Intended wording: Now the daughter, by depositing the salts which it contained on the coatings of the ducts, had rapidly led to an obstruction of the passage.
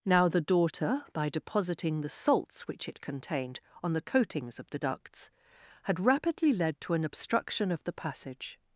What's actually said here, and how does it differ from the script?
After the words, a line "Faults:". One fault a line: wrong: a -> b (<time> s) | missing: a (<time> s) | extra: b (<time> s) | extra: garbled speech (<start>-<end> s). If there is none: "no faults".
Now the daughter, by depositing the salts which it contained on the coatings of the ducts, had rapidly led to an obstruction of the passage.
Faults:
no faults